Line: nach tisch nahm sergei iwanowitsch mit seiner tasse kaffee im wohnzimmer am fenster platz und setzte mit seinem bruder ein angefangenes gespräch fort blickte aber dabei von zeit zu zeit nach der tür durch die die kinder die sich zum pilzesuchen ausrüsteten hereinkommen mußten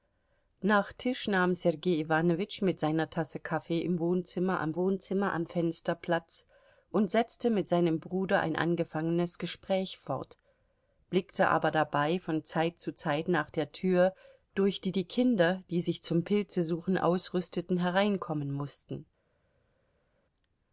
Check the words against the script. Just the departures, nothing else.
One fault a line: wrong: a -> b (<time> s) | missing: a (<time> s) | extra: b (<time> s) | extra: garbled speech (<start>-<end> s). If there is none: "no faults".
extra: wohnzimmer am (4.8 s)